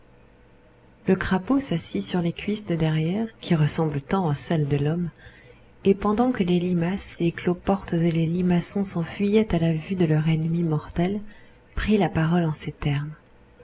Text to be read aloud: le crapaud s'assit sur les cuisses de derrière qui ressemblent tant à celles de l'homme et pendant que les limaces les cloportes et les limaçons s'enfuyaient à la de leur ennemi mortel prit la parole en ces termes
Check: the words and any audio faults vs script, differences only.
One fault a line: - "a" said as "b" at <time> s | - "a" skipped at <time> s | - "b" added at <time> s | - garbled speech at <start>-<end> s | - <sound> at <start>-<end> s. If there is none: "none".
- "vue" added at 9.7 s